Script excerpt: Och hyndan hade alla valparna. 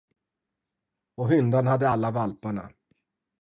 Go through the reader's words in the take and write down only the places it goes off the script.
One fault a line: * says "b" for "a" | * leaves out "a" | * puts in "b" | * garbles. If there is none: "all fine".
all fine